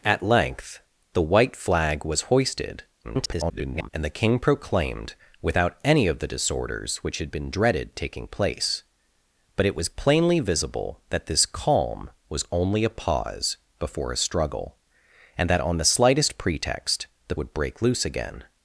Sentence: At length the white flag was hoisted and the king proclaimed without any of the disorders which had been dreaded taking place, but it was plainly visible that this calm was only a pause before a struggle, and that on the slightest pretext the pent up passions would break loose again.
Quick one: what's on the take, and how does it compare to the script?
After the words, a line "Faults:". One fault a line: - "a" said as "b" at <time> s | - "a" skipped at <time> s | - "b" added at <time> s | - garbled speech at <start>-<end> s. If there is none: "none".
At length the white flag was hoisted [garbled] and the king proclaimed without any of the disorders which had been dreaded taking place, but it was plainly visible that this calm was only a pause before a struggle, and that on the slightest pretext the would break loose again.
Faults:
- garbled speech at 3.0-3.9 s
- "pent up passions" skipped at 17.4 s